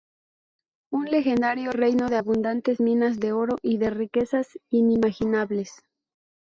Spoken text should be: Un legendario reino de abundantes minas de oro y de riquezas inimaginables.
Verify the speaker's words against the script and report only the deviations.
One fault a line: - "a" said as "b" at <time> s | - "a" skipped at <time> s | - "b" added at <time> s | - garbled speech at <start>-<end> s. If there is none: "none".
none